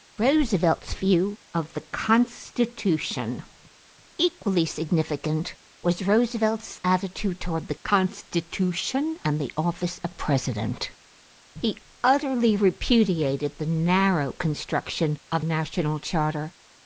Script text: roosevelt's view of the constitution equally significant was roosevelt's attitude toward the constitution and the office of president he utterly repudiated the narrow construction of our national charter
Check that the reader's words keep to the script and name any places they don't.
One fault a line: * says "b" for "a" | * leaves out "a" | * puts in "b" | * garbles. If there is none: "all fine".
* leaves out "our"